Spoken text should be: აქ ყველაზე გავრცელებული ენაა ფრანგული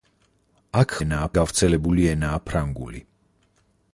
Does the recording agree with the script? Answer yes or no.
no